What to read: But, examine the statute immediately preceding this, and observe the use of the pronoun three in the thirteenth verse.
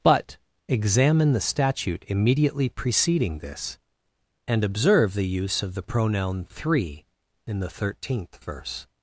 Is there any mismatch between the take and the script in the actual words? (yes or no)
no